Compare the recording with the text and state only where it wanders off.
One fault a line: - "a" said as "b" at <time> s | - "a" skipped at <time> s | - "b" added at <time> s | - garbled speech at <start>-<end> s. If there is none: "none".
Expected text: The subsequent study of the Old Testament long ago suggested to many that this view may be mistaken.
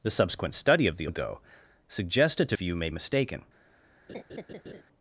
- "Old Testament long" skipped at 1.1 s
- "many that this" skipped at 2.6 s
- "be" skipped at 2.9 s